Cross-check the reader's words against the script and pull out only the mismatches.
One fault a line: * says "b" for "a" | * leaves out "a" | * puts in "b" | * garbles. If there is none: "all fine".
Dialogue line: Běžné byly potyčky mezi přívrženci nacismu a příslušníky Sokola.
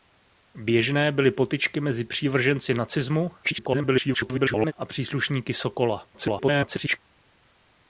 * garbles
* garbles